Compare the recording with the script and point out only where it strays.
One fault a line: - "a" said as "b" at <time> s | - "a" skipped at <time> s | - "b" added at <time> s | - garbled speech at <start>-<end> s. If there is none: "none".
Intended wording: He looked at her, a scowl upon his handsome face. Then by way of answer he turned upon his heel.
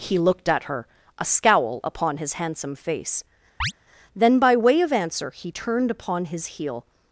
none